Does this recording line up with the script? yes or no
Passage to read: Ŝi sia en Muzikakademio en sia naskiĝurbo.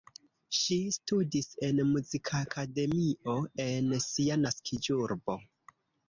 no